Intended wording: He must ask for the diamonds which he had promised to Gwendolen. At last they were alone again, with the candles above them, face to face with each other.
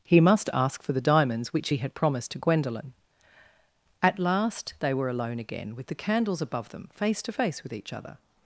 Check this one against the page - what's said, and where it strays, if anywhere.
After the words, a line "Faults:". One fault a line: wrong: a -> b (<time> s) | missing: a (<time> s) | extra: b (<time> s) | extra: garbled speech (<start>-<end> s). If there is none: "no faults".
He must ask for the diamonds which he had promised to Gwendolen. At last they were alone again, with the candles above them, face to face with each other.
Faults:
no faults